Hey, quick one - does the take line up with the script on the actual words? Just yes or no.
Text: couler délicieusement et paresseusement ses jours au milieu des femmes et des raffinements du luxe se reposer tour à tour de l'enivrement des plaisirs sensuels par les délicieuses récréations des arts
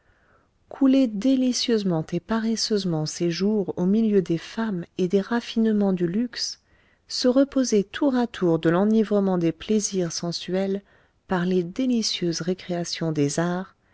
yes